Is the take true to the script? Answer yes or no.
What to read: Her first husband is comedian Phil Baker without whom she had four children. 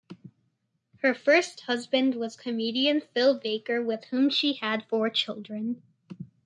no